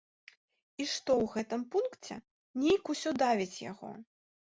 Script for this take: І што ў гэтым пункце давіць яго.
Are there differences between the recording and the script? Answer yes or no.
yes